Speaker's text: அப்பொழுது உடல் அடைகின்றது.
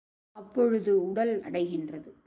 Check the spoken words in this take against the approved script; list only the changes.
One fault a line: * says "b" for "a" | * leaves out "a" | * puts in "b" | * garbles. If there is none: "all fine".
all fine